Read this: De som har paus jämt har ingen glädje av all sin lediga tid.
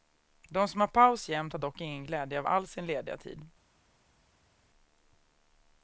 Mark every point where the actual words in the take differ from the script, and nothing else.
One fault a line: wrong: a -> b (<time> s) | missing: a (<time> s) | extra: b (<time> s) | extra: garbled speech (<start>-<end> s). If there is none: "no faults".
extra: dock (1.6 s)